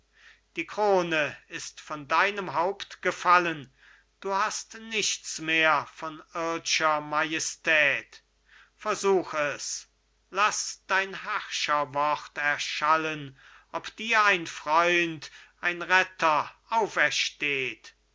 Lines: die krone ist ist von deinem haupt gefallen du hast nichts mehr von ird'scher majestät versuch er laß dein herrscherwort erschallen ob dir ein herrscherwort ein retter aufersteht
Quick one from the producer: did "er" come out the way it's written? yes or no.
no